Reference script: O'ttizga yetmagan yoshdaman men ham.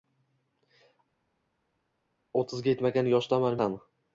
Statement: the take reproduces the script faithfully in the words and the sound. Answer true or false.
false